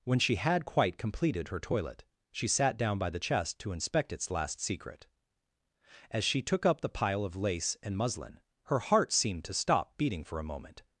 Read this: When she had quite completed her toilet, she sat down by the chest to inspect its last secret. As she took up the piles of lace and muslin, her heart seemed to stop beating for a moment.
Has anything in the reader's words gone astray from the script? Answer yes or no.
yes